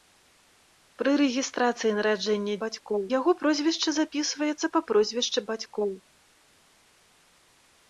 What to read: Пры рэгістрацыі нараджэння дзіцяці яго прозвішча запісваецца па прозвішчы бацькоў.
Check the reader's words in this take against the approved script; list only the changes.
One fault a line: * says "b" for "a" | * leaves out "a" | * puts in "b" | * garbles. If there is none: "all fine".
* says "бацькоў" for "дзіцяці"